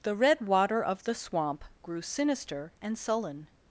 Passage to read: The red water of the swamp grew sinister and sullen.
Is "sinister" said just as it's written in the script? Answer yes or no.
yes